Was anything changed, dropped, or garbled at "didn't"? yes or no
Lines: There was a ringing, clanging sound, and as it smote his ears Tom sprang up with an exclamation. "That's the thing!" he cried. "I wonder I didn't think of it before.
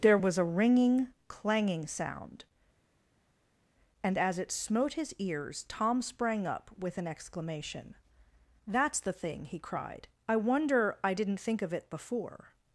no